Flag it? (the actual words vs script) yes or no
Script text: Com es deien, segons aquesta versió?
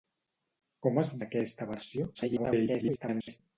yes